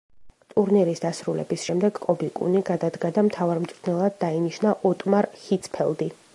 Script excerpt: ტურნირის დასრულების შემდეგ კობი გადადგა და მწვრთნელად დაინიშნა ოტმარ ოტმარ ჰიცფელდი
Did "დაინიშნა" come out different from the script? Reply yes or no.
no